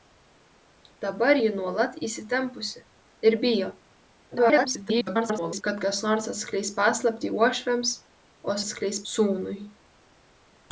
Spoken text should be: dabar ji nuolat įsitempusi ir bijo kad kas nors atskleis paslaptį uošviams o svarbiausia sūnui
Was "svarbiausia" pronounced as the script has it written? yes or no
no